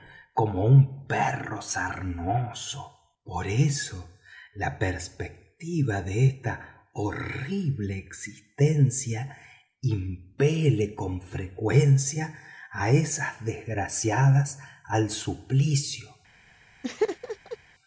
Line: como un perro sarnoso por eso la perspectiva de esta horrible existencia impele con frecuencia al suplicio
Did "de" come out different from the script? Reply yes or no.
no